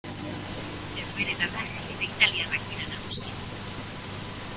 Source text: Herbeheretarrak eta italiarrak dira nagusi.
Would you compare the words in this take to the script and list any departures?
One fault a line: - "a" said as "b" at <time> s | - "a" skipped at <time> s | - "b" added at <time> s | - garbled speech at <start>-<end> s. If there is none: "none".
none